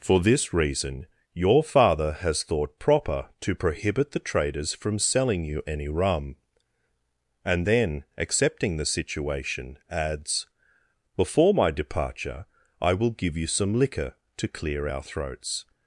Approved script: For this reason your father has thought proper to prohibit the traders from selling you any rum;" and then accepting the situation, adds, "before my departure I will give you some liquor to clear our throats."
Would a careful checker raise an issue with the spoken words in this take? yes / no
no